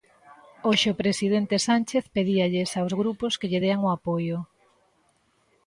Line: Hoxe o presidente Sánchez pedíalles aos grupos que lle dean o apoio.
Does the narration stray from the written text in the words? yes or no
no